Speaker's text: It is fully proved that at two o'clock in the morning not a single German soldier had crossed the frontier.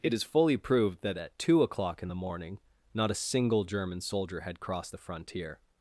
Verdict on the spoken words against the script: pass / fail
pass